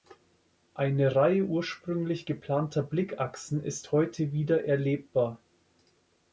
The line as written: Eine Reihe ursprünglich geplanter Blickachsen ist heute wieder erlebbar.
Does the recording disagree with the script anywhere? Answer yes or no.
no